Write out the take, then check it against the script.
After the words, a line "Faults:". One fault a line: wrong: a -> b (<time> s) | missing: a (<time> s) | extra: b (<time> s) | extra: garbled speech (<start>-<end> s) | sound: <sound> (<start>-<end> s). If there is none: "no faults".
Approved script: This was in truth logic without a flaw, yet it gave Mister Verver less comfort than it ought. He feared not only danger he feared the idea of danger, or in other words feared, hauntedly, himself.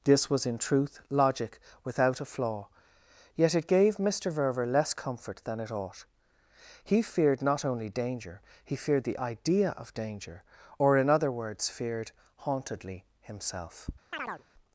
This was in truth logic without a flaw, yet it gave Mister Verver less comfort than it ought. He feared not only danger he feared the idea of danger, or in other words feared, hauntedly, himself.
Faults:
sound: chirp (14.1-14.4 s)